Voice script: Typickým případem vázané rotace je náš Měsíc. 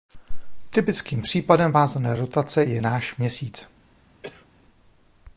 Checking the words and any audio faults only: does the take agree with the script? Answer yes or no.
no